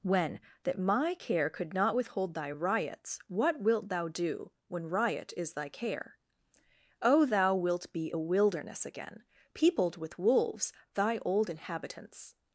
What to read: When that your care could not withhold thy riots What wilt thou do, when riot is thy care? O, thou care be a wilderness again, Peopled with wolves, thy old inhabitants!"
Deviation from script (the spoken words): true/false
true